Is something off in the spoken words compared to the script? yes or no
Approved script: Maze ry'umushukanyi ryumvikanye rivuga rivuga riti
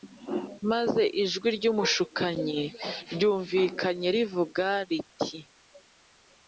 yes